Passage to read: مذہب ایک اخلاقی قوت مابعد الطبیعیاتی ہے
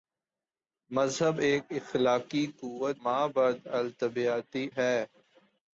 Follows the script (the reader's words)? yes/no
yes